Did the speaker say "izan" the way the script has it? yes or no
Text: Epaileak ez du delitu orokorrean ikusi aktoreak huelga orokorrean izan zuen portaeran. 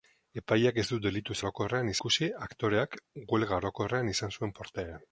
yes